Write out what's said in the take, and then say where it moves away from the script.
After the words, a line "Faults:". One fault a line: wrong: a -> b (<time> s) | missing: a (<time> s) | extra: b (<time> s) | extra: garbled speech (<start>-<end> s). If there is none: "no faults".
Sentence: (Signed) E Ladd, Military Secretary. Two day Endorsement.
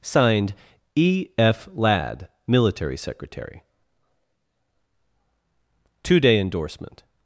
(Signed) E F Ladd, Military Secretary. Two day Endorsement.
Faults:
extra: F (1.4 s)